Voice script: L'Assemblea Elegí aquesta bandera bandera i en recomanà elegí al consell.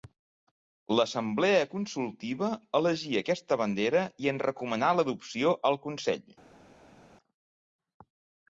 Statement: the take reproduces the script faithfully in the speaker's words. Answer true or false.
false